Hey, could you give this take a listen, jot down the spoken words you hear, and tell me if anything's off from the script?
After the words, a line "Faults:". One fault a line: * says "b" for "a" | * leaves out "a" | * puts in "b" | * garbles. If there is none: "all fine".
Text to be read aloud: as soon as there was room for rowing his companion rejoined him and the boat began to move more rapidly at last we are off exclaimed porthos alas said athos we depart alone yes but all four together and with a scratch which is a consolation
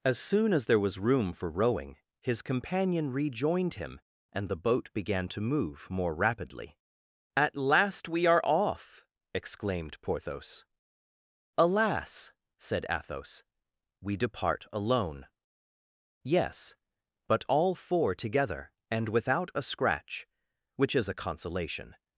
as soon as there was room for rowing his companion rejoined him and the boat began to move more rapidly at last we are off exclaimed porthos alas said athos we depart alone yes but all four together and without a scratch which is a consolation
Faults:
* says "without" for "with"